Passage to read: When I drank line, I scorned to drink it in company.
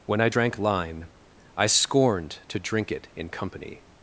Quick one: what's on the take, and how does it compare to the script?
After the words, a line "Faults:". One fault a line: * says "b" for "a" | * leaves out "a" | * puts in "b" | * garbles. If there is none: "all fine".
When I drank line, I scorned to drink it in company.
Faults:
all fine